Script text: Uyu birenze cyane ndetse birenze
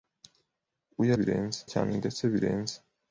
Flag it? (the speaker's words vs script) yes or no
no